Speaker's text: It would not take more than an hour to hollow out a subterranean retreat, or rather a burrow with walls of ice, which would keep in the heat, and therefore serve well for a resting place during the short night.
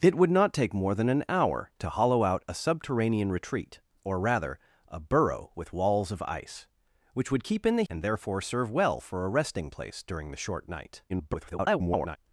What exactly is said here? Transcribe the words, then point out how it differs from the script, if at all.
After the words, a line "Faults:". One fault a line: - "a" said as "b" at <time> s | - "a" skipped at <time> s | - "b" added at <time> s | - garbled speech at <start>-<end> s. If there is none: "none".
It would not take more than an hour to hollow out a subterranean retreat, or rather a burrow with walls of ice, which would keep in the and therefore serve well for a resting place during the short night. [garbled]
Faults:
- "heat" skipped at 7.8 s
- garbled speech at 11.1-12.2 s